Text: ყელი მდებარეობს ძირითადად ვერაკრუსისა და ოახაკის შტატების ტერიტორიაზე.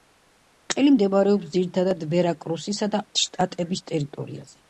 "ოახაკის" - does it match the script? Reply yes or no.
no